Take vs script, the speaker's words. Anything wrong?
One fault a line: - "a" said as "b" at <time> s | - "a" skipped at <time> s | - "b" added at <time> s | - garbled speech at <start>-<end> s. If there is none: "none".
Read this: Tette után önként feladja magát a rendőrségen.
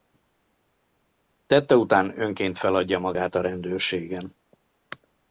none